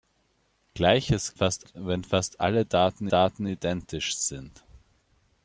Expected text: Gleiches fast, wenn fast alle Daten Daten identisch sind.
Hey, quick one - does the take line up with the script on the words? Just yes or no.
yes